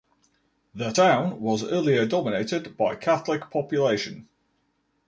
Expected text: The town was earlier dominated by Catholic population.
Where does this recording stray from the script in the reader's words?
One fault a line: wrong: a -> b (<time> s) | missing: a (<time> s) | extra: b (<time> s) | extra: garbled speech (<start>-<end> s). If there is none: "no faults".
no faults